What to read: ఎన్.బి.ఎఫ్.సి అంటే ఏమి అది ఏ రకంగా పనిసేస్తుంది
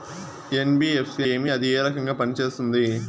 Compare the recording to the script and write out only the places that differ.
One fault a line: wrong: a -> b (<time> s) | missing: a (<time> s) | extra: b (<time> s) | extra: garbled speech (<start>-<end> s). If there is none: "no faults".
missing: అంటే (1.2 s)